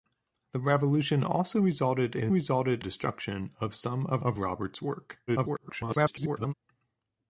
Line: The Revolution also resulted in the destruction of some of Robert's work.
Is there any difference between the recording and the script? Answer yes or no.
yes